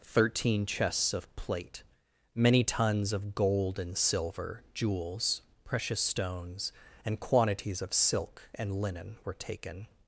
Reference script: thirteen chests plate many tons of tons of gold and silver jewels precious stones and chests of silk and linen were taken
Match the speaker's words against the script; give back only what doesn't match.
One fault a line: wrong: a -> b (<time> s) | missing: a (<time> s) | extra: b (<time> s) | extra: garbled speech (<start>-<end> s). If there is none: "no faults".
extra: of (1.1 s)
missing: tons of (3.3 s)
wrong: chests -> quantities (7.2 s)